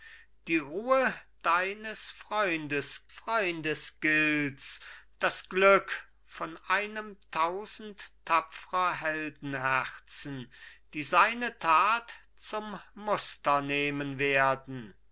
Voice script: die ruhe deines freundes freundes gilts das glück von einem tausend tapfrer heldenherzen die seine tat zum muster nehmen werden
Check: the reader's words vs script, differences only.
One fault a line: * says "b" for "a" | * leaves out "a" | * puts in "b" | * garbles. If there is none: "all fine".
all fine